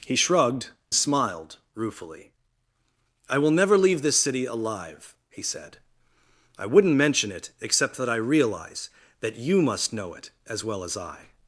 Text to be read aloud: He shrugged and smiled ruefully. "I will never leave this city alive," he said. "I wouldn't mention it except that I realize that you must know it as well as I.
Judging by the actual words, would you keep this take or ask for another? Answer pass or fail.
fail